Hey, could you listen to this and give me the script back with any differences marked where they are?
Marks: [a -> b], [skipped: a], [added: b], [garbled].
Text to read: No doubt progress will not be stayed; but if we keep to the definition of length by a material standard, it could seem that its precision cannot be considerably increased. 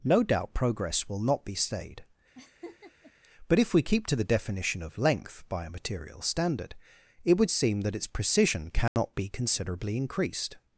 No doubt progress will not be stayed; but if we keep to the definition of length by a material standard, it [could -> would] seem that its precision cannot be considerably increased.